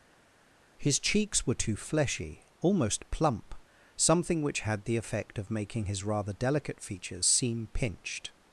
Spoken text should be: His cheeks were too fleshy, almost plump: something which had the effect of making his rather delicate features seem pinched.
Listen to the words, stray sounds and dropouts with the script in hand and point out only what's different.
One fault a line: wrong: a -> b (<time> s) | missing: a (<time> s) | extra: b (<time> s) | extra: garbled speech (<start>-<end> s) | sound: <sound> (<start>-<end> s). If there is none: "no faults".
no faults